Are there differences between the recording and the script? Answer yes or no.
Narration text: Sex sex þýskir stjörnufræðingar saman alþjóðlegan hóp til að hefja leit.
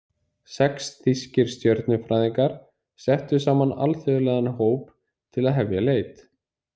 yes